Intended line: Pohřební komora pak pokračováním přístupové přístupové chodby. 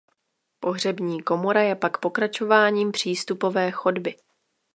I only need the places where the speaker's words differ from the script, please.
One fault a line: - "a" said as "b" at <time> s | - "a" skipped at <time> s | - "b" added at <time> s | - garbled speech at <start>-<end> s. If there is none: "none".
- "je" added at 1.6 s
- "přístupové" skipped at 3.7 s